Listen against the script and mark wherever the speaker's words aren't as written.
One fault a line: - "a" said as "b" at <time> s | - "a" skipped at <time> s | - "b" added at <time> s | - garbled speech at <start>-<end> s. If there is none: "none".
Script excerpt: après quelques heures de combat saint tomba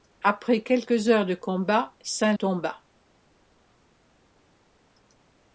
none